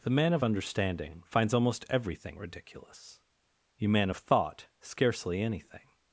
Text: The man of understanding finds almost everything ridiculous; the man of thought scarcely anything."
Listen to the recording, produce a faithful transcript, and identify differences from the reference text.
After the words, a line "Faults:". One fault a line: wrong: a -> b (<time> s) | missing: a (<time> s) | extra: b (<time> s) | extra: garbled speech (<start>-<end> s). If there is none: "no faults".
The man of understanding finds almost everything ridiculous; you man of thought scarcely anything."
Faults:
wrong: the -> you (3.8 s)